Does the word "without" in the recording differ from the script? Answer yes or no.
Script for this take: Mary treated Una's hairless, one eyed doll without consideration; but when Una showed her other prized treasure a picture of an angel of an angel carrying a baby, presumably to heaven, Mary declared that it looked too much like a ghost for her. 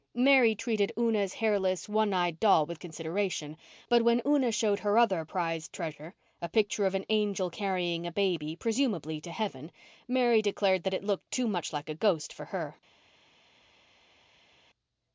yes